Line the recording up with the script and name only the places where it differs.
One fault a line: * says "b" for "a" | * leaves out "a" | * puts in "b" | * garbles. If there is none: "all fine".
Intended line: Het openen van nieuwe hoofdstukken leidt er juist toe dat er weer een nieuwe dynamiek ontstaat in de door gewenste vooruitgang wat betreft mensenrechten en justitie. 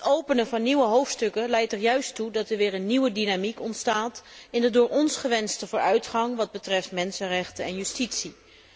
* puts in "ons"